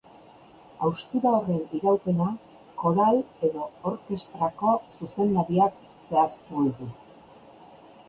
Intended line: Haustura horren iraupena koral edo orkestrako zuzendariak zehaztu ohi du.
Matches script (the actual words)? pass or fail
pass